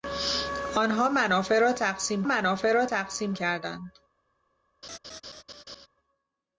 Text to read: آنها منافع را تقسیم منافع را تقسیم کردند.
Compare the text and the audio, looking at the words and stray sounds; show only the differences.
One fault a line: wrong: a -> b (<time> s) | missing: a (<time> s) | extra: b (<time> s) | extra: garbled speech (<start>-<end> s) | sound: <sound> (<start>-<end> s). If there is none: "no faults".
sound: laugh (4.8-5.9 s)